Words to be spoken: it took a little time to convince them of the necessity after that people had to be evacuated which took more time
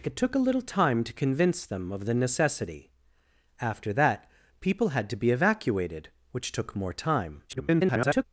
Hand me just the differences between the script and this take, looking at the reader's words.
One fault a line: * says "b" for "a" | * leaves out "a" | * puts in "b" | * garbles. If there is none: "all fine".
* garbles